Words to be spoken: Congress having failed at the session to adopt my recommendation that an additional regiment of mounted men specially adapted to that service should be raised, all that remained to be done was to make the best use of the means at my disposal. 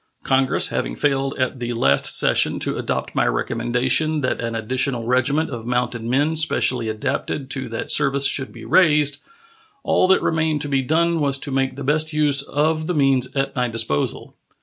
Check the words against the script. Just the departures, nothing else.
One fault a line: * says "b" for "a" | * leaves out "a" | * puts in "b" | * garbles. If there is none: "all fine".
* puts in "last"